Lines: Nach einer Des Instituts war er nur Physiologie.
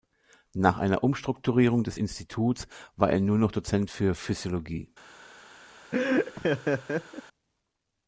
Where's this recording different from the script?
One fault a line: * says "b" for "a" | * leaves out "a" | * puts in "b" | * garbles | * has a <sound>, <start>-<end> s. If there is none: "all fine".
* puts in "Umstrukturierung"
* puts in "noch Dozent für"
* has a laugh, 5.9-7.2 s